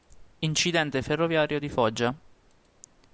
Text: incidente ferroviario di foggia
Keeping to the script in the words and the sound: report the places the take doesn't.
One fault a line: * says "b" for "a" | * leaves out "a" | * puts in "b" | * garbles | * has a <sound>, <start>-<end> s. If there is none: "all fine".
all fine